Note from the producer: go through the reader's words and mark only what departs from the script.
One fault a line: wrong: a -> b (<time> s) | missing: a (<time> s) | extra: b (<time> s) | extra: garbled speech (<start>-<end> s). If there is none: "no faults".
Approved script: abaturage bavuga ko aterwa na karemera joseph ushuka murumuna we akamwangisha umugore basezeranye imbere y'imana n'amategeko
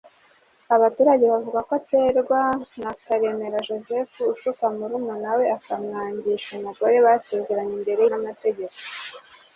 missing: y'imana (8.0 s)